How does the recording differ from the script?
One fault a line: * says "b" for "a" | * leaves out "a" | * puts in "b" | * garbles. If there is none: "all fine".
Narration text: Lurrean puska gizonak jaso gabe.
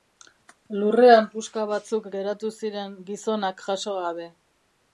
* puts in "batzuk geratu ziren"